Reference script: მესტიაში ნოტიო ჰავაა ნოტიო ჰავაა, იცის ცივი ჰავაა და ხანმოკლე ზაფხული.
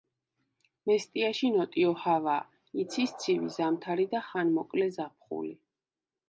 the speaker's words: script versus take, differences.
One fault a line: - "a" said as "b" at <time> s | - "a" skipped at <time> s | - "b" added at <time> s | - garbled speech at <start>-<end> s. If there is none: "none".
- "ნოტიო ჰავაა" skipped at 2.5 s
- "ჰავაა" said as "ზამთარი" at 3.6 s